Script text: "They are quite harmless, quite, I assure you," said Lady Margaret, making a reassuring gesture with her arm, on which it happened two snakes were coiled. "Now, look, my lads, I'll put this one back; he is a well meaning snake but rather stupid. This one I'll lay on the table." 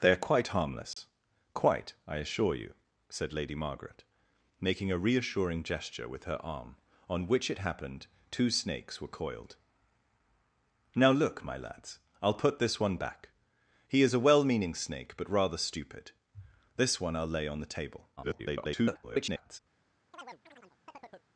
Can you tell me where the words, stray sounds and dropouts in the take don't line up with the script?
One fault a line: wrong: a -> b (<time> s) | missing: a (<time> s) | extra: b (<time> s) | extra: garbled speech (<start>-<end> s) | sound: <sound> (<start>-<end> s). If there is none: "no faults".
sound: dropout (0.9-1.0 s)
extra: garbled speech (18.2-19.6 s)
sound: chirp (20.1-21.3 s)